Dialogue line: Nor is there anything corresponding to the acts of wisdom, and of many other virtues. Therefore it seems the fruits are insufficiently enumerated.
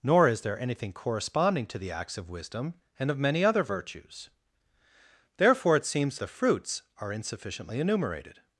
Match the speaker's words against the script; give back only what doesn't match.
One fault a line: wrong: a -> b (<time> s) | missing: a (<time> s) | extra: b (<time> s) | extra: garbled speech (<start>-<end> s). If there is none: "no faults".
no faults